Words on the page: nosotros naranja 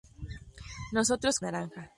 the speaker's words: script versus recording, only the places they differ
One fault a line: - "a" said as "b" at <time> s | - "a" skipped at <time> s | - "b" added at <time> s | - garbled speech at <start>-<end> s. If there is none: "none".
none